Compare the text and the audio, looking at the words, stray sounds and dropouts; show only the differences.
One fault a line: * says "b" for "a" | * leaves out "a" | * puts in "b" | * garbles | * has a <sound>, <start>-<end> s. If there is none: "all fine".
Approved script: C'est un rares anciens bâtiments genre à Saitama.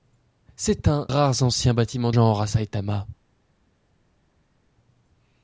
all fine